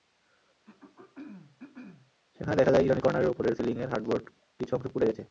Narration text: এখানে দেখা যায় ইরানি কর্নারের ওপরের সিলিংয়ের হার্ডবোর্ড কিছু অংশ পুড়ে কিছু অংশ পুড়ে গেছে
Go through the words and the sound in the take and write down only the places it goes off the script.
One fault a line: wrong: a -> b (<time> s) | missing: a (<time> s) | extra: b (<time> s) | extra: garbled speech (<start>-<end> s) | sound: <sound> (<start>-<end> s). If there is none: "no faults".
sound: throat clearing (0.6-2.1 s)
wrong: এখানে -> সেখানে (2.4 s)
missing: কিছু অংশ পুড়ে (5.1 s)